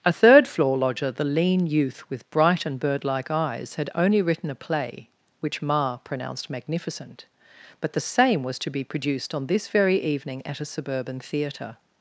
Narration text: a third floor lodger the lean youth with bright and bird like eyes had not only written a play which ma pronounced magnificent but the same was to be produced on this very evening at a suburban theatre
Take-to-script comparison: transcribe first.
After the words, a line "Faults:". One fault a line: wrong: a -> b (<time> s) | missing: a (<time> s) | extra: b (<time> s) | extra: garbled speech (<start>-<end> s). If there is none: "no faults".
a third floor lodger the lean youth with bright and bird like eyes had only written a play which ma pronounced magnificent but the same was to be produced on this very evening at a suburban theatre
Faults:
missing: not (3.9 s)